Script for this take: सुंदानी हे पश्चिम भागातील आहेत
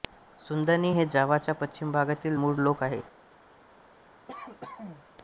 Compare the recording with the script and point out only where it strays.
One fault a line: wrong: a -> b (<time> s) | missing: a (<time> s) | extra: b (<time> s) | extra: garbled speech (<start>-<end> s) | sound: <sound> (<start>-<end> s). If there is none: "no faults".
extra: जावाच्या (1.1 s)
extra: मूळ लोक (2.3 s)
sound: cough (4.3-5.0 s)